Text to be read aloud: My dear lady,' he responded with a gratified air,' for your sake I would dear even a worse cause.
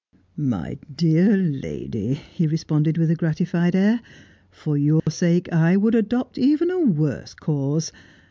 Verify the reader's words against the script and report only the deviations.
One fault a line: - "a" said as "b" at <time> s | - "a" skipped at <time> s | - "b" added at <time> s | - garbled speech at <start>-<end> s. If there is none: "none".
- "dear" said as "adopt" at 5.9 s